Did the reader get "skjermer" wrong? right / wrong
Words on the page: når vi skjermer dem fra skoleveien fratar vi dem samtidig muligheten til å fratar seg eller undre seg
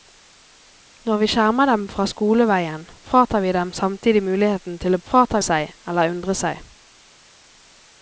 right